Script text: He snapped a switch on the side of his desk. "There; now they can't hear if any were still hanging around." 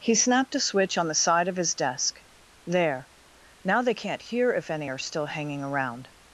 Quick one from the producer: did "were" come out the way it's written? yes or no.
no